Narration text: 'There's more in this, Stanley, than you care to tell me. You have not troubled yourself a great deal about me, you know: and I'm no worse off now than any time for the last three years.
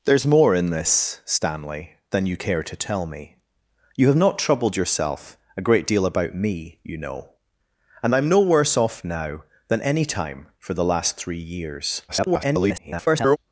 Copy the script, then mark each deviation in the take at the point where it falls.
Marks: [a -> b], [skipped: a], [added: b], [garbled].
'There's more in this, Stanley, than you care to tell me. You have not troubled yourself a great deal about me, you know: and I'm no worse off now than any time for the last three years. [garbled]